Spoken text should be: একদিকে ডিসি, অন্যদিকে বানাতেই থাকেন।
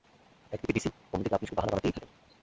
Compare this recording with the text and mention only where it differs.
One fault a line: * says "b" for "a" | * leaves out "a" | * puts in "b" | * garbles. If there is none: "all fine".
* puts in "আপনি শুধু বাহানা"